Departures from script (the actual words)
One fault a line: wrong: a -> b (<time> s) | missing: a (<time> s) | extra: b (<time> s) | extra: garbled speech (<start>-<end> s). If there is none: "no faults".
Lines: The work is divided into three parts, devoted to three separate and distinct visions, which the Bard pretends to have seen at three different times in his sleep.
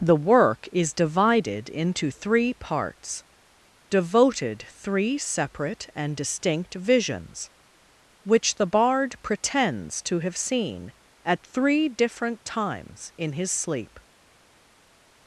missing: to (4.6 s)